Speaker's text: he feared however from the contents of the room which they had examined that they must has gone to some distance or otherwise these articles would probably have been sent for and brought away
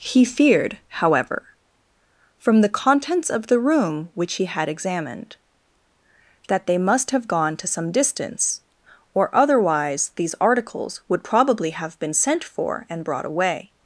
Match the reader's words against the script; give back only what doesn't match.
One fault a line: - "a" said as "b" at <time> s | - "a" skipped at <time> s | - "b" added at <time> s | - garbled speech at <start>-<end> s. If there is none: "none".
- "they" said as "he" at 4.3 s
- "has" said as "have" at 7.1 s